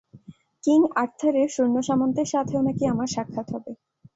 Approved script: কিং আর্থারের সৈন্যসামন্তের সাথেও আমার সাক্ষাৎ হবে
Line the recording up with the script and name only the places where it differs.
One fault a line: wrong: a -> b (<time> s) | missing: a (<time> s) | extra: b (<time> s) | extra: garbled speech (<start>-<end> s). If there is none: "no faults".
extra: নাকি (2.7 s)